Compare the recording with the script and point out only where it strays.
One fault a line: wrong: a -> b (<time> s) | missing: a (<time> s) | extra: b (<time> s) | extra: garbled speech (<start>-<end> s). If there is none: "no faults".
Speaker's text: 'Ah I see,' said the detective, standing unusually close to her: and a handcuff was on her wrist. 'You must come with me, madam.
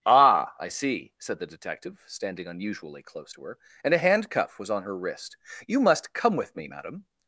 no faults